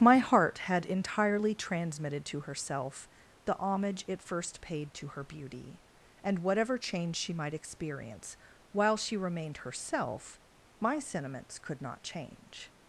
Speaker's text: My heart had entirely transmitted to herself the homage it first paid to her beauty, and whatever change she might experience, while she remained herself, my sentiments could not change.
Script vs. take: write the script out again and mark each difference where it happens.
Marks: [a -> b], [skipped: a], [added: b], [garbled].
My heart had entirely transmitted to herself the homage it first paid to her beauty, and whatever change she might experience, while she remained herself, my sentiments could not change.